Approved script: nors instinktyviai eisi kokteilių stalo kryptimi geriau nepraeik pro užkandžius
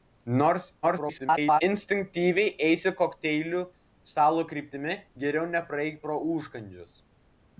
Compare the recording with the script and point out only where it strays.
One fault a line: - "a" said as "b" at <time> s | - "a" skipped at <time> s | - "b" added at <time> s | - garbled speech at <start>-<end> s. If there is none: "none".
- garbled speech at 0.8-1.6 s